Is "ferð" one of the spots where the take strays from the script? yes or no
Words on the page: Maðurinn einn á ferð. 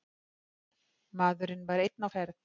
no